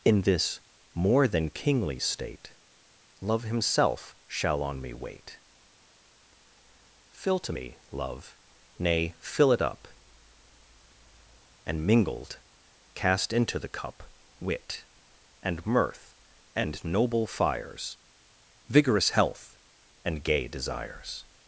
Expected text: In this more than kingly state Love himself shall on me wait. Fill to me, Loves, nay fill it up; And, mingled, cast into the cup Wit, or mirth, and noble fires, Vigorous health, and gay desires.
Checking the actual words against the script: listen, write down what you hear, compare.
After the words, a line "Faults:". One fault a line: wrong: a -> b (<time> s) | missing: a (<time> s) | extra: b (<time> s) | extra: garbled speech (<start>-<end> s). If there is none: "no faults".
In this more than kingly state Love himself shall on me wait. Fill to me, Love, nay fill it up; And, mingled, cast into the cup Wit, and mirth, and noble fires, Vigorous health, and gay desires.
Faults:
wrong: Loves -> Love (7.9 s)
wrong: or -> and (15.4 s)